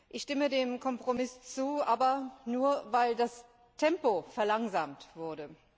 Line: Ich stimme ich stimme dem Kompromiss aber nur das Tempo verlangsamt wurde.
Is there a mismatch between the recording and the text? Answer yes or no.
yes